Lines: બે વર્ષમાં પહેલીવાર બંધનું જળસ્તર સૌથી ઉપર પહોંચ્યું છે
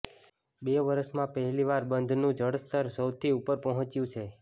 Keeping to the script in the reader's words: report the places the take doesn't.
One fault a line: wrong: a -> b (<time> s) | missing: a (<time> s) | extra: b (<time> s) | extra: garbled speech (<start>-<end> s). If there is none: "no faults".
no faults